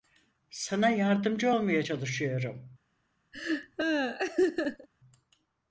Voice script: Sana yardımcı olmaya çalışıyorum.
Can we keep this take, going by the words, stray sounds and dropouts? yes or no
no